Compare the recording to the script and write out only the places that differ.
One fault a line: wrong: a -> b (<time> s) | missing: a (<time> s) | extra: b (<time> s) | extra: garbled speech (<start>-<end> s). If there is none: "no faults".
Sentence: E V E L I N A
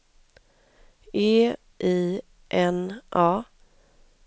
missing: V E L (1.5 s)